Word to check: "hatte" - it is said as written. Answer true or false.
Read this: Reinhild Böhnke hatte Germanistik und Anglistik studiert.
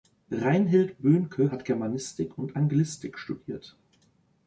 false